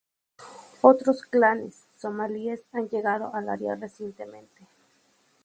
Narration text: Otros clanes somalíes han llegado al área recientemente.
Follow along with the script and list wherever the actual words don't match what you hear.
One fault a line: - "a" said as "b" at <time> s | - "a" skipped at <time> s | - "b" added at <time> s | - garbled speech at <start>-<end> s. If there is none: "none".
none